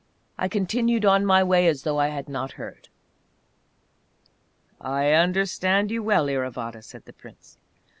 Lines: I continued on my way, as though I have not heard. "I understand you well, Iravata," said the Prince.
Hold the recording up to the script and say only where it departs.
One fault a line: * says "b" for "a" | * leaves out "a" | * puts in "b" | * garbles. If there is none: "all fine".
* says "had" for "have"